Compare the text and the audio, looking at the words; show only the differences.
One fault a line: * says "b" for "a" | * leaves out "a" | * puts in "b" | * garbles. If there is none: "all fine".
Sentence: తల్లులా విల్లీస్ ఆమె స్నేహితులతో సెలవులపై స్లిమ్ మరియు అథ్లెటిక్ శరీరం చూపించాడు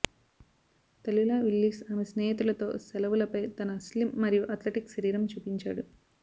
* puts in "తన"